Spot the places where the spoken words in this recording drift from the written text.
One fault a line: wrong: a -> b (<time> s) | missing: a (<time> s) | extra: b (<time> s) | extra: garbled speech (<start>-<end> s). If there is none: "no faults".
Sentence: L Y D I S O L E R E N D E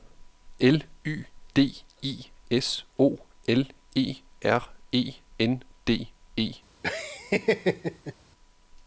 no faults